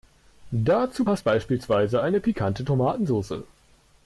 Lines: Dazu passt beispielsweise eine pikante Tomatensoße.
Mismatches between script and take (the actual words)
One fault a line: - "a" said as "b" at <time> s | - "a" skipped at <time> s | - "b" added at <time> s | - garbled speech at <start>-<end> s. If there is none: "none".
none